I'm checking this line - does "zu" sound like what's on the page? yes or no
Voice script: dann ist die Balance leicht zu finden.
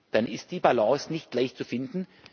yes